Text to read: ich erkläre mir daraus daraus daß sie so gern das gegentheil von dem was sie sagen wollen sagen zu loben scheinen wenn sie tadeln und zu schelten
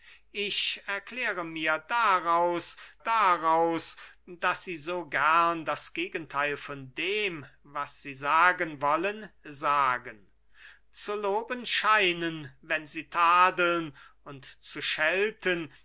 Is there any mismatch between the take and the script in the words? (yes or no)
no